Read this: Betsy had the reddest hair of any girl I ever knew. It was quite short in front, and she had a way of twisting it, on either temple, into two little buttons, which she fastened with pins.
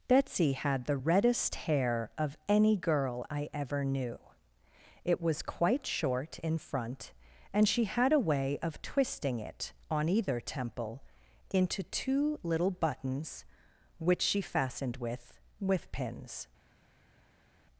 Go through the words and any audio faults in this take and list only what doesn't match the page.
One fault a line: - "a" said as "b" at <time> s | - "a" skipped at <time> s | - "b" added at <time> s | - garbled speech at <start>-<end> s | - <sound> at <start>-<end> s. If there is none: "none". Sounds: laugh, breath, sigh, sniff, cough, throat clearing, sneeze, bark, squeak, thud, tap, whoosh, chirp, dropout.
- "with" added at 15.6 s